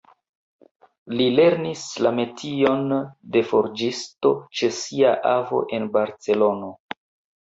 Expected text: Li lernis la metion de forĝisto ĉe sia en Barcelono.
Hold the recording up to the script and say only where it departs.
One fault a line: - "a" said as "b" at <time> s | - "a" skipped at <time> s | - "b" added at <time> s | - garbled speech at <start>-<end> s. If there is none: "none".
- "avo" added at 5.3 s